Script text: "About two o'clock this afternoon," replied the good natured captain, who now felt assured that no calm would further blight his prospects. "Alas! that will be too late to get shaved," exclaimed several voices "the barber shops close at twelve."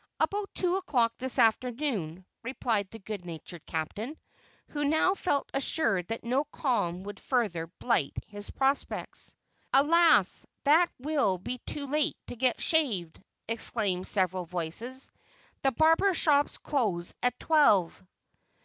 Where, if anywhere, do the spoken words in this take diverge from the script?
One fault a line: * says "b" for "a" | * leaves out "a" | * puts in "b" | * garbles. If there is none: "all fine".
all fine